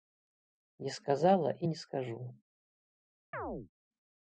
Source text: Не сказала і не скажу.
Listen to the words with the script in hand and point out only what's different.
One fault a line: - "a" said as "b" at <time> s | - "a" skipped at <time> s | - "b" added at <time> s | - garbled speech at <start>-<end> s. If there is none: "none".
none